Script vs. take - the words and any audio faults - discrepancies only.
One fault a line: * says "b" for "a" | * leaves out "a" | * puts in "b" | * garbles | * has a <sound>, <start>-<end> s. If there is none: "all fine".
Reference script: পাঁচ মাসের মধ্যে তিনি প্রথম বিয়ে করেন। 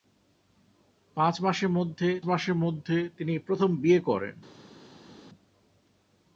* puts in "মাসের মধ্যে"